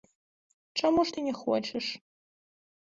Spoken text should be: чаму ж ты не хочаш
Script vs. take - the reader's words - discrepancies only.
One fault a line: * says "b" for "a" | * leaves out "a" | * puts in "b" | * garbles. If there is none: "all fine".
all fine